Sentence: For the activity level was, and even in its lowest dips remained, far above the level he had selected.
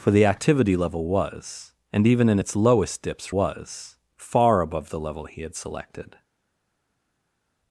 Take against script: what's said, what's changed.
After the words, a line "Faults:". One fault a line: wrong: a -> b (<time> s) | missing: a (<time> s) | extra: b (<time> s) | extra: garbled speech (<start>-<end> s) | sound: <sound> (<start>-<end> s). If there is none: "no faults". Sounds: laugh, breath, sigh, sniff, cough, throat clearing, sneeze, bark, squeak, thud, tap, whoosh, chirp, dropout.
For the activity level was, and even in its lowest dips was, far above the level he had selected.
Faults:
wrong: remained -> was (3.3 s)